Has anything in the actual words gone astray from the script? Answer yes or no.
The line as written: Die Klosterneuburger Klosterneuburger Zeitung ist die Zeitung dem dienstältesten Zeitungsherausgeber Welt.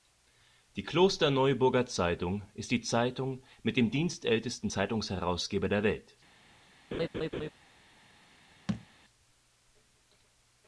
yes